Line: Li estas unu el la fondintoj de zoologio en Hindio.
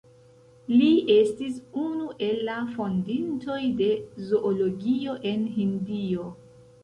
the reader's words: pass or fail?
fail